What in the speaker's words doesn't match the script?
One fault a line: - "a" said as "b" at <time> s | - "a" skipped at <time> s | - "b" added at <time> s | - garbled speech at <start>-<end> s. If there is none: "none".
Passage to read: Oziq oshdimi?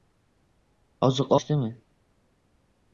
none